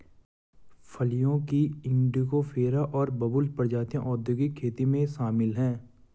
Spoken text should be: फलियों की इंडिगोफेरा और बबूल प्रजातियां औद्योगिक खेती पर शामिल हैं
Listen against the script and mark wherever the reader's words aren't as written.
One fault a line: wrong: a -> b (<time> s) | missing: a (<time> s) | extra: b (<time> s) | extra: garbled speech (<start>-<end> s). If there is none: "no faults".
wrong: पर -> में (4.9 s)